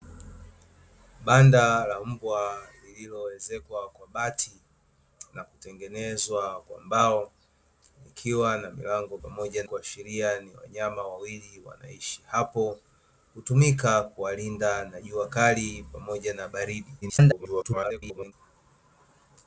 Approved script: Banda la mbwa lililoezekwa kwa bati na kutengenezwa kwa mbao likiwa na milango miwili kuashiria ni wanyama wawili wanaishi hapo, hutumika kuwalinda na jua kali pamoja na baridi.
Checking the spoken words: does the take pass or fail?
fail